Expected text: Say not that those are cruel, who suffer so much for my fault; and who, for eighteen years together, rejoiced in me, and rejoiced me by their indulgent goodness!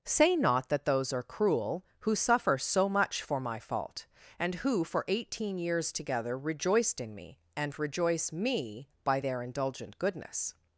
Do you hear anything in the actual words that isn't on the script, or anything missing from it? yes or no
yes